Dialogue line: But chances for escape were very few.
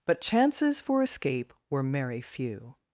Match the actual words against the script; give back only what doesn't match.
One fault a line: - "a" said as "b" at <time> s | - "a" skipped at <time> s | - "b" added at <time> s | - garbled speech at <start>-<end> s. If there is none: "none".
- "very" said as "merry" at 1.8 s